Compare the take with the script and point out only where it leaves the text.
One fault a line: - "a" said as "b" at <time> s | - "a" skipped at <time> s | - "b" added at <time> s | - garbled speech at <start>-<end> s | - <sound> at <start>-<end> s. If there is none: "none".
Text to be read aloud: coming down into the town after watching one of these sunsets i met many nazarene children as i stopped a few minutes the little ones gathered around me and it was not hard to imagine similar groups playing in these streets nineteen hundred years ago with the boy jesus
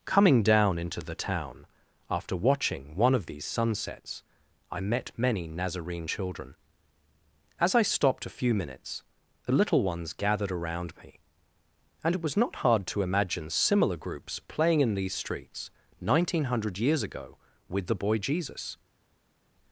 none